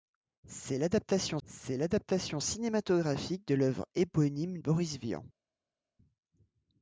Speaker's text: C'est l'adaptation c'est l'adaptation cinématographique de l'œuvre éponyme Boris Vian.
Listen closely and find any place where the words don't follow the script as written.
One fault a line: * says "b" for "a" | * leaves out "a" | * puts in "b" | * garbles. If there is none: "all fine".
all fine